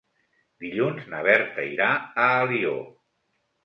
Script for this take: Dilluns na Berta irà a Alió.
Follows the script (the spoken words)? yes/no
yes